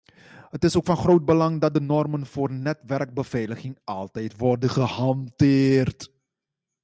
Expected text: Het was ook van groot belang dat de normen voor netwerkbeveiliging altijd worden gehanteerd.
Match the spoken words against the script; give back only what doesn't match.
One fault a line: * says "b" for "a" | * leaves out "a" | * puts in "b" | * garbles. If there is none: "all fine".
* says "is" for "was"